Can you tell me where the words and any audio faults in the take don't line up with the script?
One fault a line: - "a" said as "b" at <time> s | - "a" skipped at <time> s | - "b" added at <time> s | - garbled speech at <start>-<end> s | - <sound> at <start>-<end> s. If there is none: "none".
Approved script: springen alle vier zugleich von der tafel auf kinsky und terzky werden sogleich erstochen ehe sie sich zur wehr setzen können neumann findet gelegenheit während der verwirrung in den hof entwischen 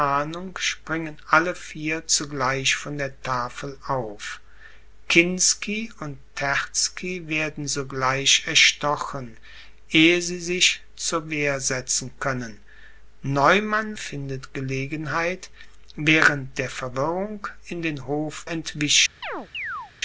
- chirp at 19.2-19.9 s